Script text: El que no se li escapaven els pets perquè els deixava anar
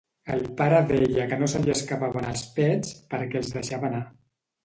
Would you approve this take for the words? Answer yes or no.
no